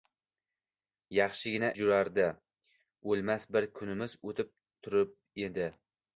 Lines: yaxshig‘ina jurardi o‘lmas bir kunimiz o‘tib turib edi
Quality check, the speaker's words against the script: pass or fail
pass